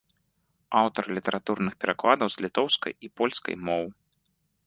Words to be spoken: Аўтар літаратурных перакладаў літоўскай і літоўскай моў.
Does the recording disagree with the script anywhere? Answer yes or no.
yes